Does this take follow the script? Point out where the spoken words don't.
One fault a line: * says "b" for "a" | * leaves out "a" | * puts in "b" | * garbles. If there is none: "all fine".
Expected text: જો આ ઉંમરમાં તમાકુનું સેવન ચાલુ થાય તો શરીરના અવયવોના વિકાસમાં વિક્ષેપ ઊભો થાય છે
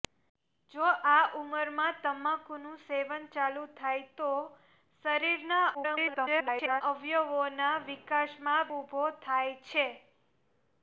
* garbles
* leaves out "વિક્ષેપ"